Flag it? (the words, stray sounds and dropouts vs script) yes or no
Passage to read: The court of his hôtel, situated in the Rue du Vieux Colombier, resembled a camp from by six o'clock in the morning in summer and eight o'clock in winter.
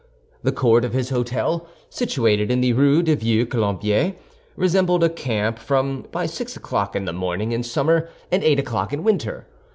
no